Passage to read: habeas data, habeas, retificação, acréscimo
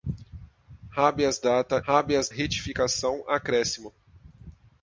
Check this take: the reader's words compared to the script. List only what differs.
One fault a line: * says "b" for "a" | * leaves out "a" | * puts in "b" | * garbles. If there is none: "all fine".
all fine